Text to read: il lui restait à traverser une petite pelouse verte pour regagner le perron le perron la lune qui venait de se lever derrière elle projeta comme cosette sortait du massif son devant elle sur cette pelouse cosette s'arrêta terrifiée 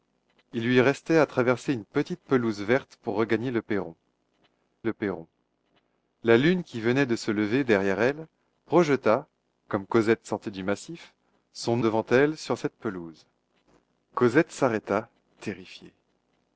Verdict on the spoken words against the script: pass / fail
pass